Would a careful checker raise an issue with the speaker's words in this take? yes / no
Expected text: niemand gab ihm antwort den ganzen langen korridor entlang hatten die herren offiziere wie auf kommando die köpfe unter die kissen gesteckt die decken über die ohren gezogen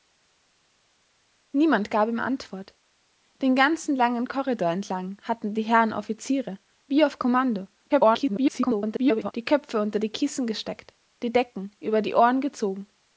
yes